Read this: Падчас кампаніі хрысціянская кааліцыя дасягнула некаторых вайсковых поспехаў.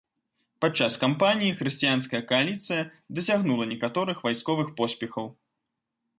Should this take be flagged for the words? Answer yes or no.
no